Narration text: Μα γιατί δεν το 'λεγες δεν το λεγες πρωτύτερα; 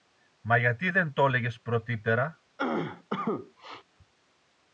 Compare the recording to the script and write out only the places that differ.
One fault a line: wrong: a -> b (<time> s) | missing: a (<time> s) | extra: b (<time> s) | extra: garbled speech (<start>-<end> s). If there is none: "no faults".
missing: δεν το λεγες (1.6 s)